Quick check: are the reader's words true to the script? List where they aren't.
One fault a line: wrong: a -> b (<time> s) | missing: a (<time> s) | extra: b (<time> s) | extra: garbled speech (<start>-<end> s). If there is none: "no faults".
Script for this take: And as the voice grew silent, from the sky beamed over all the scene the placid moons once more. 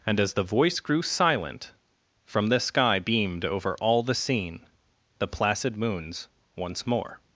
no faults